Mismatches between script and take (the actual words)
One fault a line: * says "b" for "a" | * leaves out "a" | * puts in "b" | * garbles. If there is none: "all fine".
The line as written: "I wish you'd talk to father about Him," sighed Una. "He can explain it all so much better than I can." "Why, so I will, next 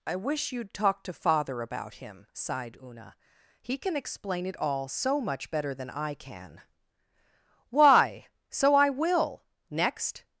all fine